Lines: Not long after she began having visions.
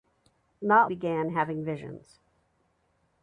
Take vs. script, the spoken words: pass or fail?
fail